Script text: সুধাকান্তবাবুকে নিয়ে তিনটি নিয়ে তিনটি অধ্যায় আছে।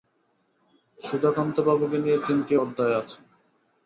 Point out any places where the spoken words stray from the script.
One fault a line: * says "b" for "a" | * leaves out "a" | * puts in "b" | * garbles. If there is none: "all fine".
* leaves out "নিয়ে তিনটি"